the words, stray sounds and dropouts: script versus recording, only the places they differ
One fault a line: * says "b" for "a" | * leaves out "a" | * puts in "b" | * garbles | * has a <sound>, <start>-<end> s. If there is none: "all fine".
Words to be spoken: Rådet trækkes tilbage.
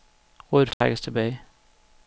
* has a dropout, 0.7-0.8 s